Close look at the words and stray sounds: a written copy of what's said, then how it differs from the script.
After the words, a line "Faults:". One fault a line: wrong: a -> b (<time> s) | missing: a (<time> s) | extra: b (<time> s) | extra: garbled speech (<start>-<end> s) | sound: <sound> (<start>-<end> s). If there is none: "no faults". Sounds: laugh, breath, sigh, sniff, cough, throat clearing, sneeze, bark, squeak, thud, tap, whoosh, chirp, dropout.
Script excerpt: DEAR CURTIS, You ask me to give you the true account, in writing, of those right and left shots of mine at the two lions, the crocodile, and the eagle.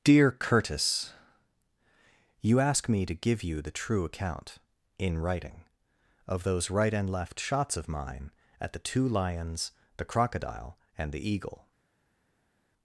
DEAR CURTIS, You ask me to give you the true account, in writing, of those right and left shots of mine at the two lions, the crocodile, and the eagle.
Faults:
no faults